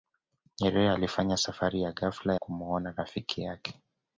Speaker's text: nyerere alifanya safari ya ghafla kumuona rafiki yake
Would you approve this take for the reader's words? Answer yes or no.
yes